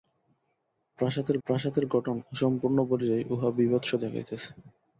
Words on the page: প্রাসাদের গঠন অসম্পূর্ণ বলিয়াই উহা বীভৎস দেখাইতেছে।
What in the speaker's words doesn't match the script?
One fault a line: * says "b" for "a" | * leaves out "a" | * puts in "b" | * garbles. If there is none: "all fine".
* puts in "প্রাসাদের"